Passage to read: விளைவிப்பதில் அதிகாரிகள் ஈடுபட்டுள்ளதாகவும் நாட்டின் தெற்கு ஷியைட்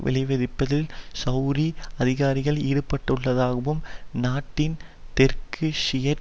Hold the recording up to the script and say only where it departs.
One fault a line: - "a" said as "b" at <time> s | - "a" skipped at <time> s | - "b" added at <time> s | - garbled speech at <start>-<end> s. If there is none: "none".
- "செளதி" added at 1.2 s